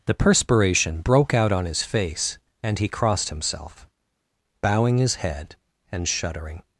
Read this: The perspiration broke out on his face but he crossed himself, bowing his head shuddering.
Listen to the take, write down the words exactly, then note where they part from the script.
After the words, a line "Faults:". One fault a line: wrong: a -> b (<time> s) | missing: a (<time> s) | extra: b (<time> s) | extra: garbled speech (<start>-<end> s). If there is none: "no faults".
The perspiration broke out on his face and he crossed himself, bowing his head and shuddering.
Faults:
wrong: but -> and (2.6 s)
extra: and (5.9 s)